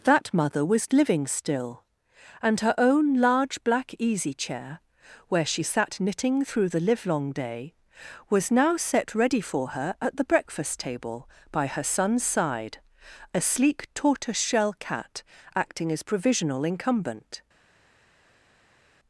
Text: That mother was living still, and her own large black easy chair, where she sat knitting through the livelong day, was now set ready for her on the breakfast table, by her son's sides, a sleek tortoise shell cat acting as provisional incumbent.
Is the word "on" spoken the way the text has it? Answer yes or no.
no